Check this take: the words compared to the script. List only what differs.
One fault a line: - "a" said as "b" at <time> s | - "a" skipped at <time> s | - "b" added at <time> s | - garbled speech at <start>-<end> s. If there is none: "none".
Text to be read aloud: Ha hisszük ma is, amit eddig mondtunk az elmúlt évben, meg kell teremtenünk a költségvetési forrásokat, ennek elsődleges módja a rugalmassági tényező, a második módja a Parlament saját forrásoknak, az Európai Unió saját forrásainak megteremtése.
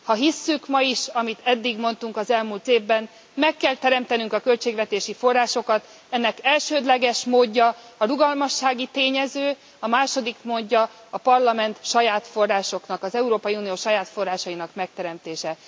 none